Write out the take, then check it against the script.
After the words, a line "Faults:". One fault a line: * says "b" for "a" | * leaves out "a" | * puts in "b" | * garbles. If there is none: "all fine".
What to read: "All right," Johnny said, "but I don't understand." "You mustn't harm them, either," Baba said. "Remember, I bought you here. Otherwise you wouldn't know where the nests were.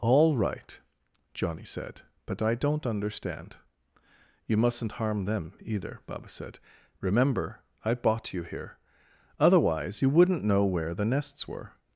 "All right," Johnny said, "but I don't understand." "You mustn't harm them, either," Baba said. "Remember, I bought you here. Otherwise you wouldn't know where the nests were.
Faults:
all fine